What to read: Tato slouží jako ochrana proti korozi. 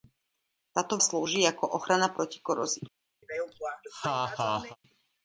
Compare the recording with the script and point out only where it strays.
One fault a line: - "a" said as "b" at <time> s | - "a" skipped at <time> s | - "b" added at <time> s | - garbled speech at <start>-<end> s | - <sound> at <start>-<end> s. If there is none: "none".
- laugh at 3.2-4.8 s